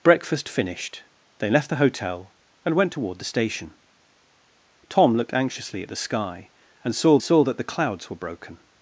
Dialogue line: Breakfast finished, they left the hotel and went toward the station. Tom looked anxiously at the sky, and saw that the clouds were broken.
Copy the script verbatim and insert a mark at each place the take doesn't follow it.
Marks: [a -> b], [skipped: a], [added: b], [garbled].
Breakfast finished, they left the hotel and went toward the station. Tom looked anxiously at the sky, and saw [added: saw] that the clouds were broken.